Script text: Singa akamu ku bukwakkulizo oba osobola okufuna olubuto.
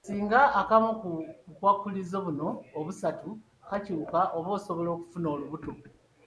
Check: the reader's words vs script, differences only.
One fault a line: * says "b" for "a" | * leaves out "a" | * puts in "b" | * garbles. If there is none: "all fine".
* puts in "buno obusatu kakyuka"